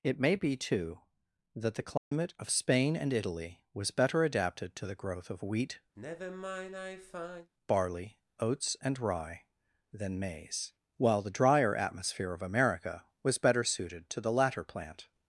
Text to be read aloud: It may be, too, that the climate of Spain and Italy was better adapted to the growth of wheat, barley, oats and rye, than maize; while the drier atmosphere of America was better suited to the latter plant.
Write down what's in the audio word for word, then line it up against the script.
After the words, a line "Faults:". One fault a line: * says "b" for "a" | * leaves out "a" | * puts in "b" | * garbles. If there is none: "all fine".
It may be, too, that the climate of Spain and Italy was better adapted to the growth of wheat, barley, oats and rye, than maize; while the drier atmosphere of America was better suited to the latter plant.
Faults:
all fine